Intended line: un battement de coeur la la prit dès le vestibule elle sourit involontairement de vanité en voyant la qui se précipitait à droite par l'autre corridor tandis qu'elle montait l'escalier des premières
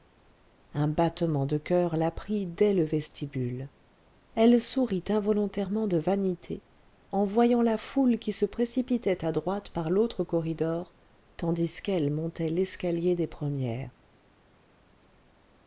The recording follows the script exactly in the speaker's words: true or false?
false